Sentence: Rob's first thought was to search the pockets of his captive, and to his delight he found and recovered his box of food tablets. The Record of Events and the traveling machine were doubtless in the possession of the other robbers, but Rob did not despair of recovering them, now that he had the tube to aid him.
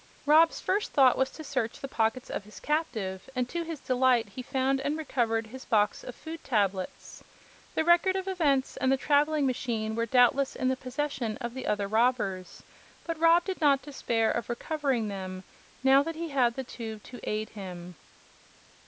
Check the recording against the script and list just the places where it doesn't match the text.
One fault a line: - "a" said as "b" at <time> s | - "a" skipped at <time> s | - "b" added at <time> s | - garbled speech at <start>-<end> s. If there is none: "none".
none